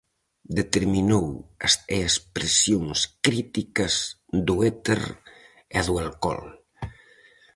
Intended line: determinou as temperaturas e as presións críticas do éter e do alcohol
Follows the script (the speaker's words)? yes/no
no